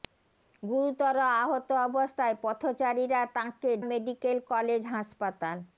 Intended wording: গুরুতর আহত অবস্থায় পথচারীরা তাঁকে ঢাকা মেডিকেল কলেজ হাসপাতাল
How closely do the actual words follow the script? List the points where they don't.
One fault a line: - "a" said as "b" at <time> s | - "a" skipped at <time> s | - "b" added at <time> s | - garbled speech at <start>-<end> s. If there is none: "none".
- "ঢাকা" skipped at 3.7 s